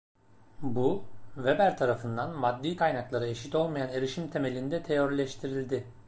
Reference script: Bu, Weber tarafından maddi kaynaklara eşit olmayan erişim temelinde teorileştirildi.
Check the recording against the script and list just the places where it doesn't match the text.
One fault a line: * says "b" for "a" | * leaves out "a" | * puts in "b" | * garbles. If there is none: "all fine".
all fine